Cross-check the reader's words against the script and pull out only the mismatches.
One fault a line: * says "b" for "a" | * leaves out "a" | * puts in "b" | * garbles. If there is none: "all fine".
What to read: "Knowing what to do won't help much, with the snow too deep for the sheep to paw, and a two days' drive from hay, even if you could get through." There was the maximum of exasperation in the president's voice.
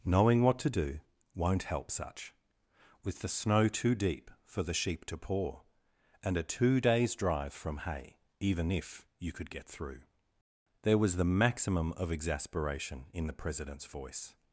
* says "such" for "much"